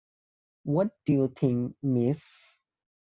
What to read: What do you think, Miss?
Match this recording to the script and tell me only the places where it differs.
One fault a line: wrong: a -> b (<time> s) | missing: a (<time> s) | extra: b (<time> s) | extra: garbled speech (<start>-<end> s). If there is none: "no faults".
no faults